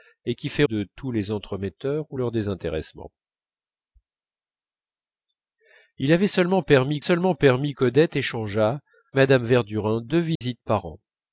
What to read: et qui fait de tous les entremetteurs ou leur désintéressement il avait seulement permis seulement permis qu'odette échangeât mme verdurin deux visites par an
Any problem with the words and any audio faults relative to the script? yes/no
yes